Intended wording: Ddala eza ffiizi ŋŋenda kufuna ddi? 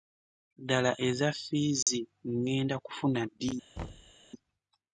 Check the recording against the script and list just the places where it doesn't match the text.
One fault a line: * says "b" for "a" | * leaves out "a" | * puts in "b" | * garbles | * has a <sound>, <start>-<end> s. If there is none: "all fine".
* has a dropout, 1.8-1.9 s
* has a thud, 3.8-4.1 s